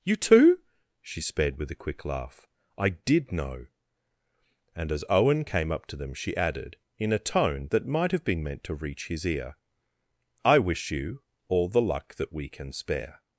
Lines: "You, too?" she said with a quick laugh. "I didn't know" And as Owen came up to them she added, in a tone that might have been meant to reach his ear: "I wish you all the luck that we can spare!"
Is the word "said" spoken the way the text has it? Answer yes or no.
no